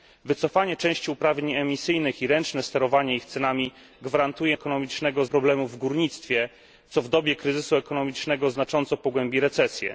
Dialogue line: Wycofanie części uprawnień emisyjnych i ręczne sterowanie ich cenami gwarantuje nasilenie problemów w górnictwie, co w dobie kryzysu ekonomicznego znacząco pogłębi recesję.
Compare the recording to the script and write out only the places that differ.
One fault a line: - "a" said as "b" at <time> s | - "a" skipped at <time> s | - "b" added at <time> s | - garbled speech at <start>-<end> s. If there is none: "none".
- "nasilenie" said as "ekonomicznego" at 4.5 s